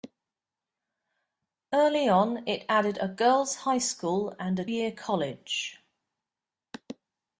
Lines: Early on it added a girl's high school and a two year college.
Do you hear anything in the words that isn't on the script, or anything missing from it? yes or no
yes